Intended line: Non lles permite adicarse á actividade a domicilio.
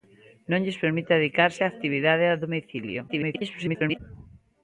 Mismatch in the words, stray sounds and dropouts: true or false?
true